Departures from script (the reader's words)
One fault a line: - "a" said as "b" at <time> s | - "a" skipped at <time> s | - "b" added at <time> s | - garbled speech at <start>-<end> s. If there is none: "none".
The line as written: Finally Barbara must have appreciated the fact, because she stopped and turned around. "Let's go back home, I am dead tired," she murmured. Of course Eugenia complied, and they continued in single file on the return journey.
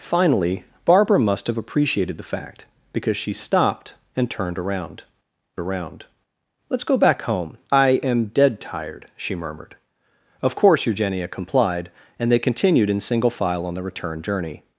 - "around" added at 5.6 s